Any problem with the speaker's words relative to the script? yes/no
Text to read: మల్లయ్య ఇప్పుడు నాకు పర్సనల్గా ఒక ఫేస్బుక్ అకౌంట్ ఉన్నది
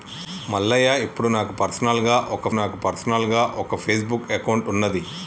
yes